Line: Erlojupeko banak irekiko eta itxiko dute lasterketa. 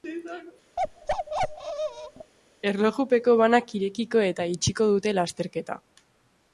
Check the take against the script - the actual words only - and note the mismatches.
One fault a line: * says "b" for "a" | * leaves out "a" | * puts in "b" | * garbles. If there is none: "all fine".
all fine